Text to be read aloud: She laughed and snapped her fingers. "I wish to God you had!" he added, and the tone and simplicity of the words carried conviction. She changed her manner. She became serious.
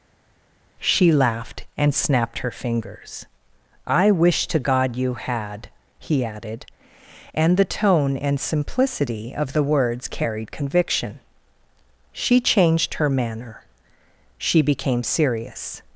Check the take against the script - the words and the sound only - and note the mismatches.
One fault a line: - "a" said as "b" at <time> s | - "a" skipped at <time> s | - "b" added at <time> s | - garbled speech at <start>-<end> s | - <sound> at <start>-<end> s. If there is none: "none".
none